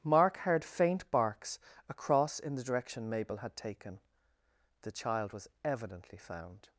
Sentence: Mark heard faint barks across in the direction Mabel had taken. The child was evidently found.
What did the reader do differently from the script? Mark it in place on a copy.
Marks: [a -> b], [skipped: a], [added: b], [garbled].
Mark heard faint barks across in the direction Mabel had taken. The child was evidently found.